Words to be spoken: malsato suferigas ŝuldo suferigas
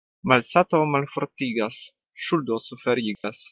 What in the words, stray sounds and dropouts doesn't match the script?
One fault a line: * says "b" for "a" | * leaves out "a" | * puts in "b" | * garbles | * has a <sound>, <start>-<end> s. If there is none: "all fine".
* says "malfortigas" for "suferigas"
* has a dropout, 3.1-3.2 s